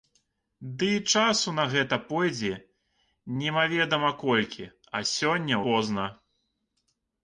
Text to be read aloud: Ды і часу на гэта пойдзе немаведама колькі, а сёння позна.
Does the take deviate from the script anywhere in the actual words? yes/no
no